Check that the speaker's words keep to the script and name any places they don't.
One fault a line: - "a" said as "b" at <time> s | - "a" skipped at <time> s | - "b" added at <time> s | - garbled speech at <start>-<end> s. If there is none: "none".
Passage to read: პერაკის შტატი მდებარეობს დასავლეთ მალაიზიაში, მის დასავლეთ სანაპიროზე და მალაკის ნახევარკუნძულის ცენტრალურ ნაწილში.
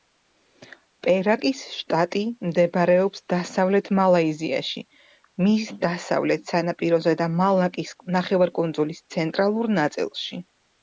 none